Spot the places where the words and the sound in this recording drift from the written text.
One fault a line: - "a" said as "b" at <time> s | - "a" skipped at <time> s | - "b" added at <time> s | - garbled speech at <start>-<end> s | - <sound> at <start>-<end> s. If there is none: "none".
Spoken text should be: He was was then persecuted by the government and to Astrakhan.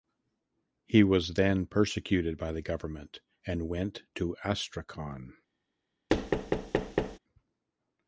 - "was" skipped at 1.4 s
- "went" added at 3.7 s
- thud at 6.1-7.2 s